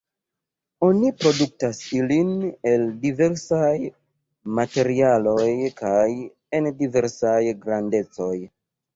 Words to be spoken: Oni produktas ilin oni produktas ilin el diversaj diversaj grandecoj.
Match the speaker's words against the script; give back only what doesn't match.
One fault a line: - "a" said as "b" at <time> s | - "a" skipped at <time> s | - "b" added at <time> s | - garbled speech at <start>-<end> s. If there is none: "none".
- "oni produktas ilin el diversaj" said as "el diversaj materialoj kaj en" at 2.7 s